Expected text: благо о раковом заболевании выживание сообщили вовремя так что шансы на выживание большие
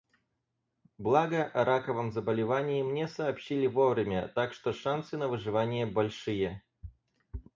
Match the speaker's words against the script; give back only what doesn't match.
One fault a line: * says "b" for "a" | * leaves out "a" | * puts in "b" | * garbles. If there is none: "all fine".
* says "мне" for "выживание"